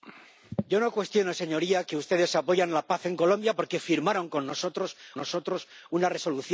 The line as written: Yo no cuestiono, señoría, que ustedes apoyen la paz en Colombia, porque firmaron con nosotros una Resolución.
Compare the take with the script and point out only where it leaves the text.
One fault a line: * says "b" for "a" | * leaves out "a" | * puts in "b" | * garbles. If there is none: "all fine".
* puts in "nosotros"